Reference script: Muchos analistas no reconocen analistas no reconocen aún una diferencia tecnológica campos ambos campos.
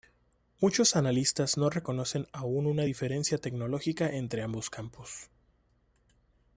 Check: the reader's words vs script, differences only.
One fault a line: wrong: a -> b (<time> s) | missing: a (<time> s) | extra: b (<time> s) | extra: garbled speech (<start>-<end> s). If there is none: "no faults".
missing: analistas no reconocen (2.2 s)
wrong: campos -> entre (4.1 s)